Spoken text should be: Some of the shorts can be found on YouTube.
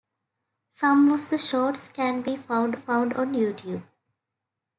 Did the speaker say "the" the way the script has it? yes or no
yes